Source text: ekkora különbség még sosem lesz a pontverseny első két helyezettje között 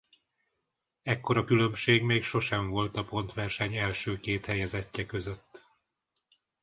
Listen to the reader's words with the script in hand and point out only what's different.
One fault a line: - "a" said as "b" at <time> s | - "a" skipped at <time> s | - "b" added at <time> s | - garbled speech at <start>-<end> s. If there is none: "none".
- "lesz" said as "volt" at 2.7 s